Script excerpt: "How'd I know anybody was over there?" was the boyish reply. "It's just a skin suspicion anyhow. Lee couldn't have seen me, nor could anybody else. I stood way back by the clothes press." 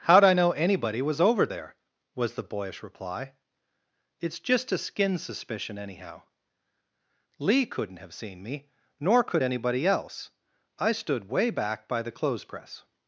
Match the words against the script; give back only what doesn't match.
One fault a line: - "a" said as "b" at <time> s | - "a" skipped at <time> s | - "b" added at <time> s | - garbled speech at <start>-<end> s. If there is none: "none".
none